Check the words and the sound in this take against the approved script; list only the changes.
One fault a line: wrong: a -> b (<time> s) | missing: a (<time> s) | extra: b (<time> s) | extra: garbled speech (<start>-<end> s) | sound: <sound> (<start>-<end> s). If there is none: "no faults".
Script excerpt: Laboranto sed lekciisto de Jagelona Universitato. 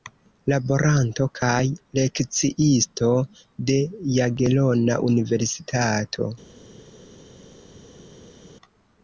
wrong: sed -> kaj (1.4 s)